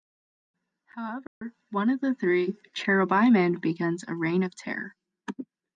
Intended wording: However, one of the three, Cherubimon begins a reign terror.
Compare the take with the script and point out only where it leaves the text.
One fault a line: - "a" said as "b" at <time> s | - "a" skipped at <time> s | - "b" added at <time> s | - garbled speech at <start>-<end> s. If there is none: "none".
- "of" added at 4.4 s